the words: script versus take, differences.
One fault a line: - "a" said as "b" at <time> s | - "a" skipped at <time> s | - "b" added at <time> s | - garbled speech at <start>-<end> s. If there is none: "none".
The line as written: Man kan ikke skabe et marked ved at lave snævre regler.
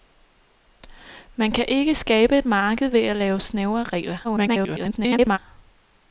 - garbled speech at 4.2-5.4 s